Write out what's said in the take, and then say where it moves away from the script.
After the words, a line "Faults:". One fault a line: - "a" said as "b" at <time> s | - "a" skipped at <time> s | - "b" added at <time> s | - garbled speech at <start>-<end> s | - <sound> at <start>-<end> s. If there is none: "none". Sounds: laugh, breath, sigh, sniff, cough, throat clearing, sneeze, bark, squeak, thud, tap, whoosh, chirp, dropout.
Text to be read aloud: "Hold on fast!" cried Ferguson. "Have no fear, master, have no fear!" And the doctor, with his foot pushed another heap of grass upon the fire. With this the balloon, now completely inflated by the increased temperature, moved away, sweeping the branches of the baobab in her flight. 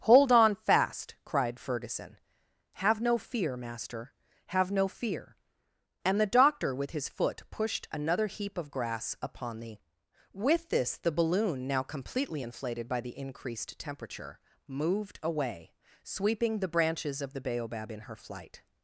"Hold on fast!" cried Ferguson. "Have no fear, master, have no fear!" And the doctor, with his foot pushed another heap of grass upon the. With this the balloon, now completely inflated by the increased temperature, moved away, sweeping the branches of the baobab in her flight.
Faults:
- "fire" skipped at 9.8 s